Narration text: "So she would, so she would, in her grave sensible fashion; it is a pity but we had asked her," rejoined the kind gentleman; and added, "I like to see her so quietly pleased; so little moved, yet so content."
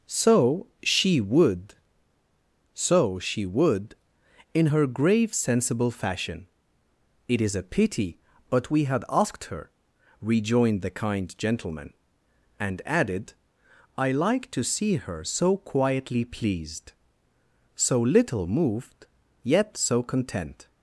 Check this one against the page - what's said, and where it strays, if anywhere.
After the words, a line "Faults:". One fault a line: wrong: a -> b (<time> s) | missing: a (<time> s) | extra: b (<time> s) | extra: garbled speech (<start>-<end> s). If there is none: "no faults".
"So she would, so she would, in her grave sensible fashion; it is a pity but we had asked her," rejoined the kind gentleman; and added, "I like to see her so quietly pleased; so little moved, yet so content."
Faults:
no faults